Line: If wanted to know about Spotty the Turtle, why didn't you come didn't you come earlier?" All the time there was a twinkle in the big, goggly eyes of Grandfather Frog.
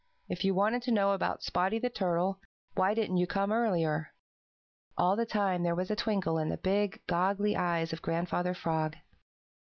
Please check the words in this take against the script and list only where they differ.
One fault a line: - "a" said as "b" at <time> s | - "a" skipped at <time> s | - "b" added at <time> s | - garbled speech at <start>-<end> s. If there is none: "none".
- "you" added at 0.4 s
- "didn't you come" skipped at 3.5 s